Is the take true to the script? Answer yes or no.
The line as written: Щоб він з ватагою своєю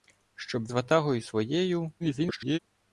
no